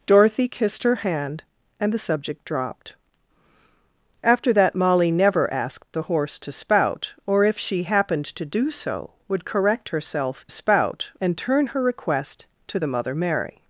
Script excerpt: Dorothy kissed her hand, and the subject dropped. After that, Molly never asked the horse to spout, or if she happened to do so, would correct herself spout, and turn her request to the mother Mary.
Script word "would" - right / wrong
right